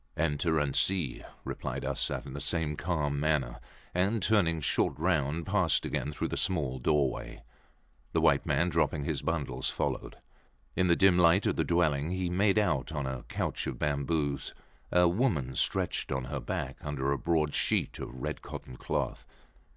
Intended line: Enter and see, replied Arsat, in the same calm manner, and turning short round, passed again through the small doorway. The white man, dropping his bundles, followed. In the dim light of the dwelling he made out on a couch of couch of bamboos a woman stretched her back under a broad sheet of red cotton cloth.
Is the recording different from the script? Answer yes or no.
yes